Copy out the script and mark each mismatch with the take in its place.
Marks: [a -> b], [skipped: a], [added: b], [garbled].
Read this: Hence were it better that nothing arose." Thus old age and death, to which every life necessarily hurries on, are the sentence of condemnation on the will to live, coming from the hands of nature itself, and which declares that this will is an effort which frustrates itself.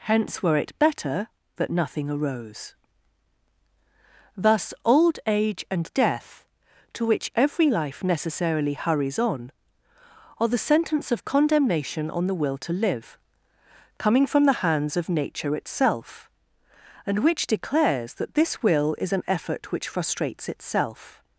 Hence were it better that nothing arose." Thus old age and death, to which every life necessarily hurries on, are the sentence of condemnation on the will to live, coming from the hands of nature itself, and which declares that this will is an effort which frustrates itself.